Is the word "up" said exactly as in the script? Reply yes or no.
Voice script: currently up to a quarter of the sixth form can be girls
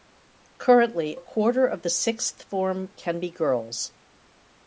no